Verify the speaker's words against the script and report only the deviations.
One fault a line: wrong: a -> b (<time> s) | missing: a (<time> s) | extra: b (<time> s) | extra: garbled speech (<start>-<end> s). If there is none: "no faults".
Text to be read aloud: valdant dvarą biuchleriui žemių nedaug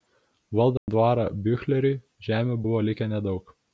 extra: buvo likę (2.7 s)